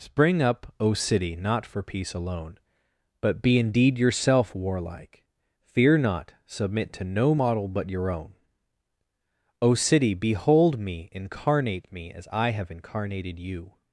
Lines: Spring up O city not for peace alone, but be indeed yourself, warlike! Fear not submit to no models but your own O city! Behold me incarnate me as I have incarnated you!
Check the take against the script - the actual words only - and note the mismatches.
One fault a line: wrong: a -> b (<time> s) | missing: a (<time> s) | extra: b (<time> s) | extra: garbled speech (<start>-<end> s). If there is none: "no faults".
wrong: models -> model (7.3 s)